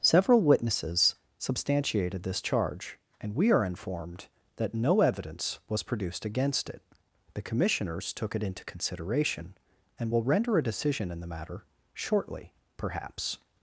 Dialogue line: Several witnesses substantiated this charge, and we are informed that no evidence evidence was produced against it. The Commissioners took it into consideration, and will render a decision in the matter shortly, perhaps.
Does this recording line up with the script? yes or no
no